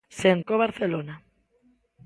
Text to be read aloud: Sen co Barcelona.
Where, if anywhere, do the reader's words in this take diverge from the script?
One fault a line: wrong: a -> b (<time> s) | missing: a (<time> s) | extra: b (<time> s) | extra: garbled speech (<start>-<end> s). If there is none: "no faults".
no faults